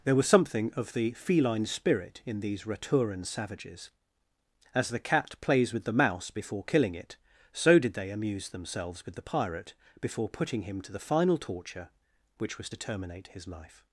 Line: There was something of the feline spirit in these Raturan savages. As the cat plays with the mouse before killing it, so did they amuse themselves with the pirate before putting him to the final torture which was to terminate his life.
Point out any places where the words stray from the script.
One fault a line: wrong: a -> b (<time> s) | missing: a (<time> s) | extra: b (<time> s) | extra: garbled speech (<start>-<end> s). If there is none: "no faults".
no faults